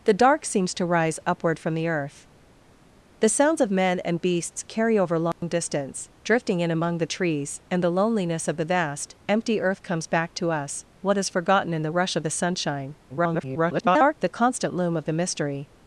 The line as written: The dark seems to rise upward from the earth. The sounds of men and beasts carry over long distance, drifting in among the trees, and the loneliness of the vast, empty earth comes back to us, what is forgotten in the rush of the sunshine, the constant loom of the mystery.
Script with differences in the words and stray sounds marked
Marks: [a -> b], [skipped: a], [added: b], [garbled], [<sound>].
The dark seems to rise upward from the earth. The sounds of men and beasts carry over long [dropout] distance, drifting in among the trees, and the loneliness of the vast, empty earth comes back to us, what is forgotten in the rush of the sunshine, [garbled] the constant loom of the mystery.